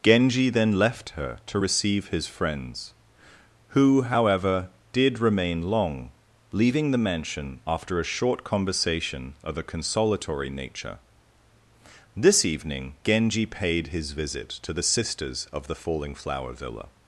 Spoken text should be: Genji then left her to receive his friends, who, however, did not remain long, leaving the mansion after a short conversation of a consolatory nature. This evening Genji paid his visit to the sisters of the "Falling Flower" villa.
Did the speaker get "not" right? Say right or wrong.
wrong